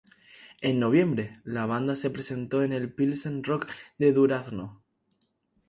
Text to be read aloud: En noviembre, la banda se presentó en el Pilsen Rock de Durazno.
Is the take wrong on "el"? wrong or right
right